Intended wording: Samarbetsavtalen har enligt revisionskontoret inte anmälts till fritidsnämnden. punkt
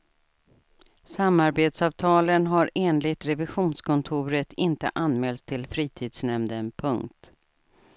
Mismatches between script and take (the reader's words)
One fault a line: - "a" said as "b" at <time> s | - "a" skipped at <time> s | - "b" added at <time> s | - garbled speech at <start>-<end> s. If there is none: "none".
none